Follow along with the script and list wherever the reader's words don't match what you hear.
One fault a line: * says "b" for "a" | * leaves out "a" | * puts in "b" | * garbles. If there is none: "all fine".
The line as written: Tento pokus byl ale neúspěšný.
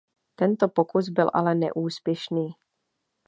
all fine